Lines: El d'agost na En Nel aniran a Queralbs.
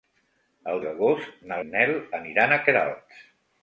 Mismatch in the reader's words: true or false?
false